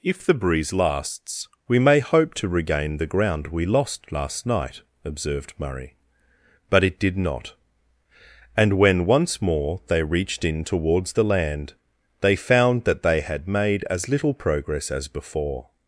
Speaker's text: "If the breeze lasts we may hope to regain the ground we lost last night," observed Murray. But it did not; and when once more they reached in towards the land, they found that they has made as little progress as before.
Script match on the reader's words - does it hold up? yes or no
no